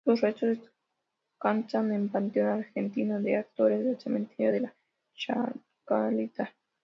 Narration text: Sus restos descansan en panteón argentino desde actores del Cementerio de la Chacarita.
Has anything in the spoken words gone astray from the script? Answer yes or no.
yes